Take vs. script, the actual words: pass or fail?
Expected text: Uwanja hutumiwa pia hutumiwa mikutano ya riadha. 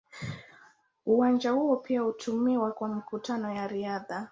fail